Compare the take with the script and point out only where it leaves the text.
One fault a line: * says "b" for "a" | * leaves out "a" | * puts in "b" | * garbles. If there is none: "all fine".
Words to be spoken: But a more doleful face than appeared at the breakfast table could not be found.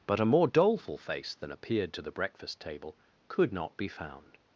* says "to" for "at"